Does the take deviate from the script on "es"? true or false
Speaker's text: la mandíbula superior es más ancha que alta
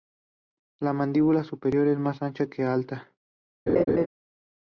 false